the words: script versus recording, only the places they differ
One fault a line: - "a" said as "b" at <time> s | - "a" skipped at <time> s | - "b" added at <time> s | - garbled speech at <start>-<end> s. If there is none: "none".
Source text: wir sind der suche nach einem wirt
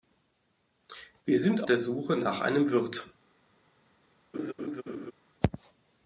none